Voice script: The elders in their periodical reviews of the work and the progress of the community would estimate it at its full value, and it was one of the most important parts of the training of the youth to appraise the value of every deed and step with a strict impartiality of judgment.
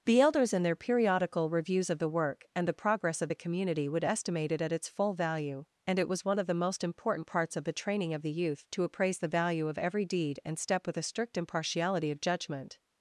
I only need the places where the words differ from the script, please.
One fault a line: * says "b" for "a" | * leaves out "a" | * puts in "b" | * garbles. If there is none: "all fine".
all fine